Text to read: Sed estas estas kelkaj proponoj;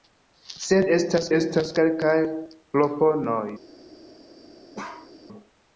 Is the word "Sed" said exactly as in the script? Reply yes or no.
yes